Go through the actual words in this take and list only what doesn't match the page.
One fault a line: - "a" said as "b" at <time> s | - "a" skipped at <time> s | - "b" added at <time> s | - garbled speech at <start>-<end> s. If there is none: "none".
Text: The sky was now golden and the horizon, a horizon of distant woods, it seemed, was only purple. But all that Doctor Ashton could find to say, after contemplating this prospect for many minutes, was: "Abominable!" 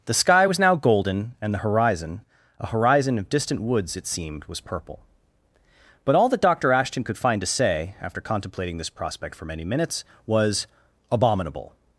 - "only" skipped at 4.6 s